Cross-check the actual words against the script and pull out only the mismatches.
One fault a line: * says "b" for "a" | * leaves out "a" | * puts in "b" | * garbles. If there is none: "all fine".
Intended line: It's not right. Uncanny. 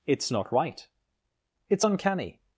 * puts in "It's"